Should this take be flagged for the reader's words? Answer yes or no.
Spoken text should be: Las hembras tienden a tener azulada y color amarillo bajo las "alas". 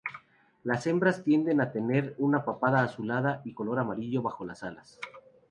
yes